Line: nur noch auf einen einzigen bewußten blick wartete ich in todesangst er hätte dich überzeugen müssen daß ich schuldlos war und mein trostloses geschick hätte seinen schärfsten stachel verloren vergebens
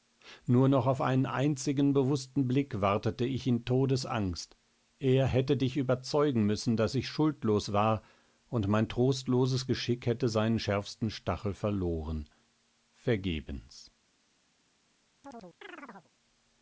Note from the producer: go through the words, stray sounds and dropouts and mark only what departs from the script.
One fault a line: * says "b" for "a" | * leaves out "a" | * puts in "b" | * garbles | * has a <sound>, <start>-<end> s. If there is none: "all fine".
* has a chirp, 15.2-16.1 s